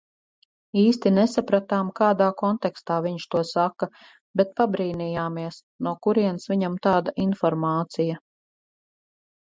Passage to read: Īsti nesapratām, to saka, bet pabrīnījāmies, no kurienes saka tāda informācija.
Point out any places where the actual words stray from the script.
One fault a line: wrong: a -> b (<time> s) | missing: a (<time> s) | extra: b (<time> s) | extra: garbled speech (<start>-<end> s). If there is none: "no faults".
extra: kādā kontekstā viņš (2.0 s)
wrong: saka -> viņam (6.5 s)